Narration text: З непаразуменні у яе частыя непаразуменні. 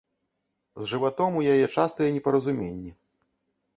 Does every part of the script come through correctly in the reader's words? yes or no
no